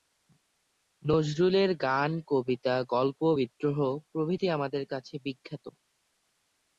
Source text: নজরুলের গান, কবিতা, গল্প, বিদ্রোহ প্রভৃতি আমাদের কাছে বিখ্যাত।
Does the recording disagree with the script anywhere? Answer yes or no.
no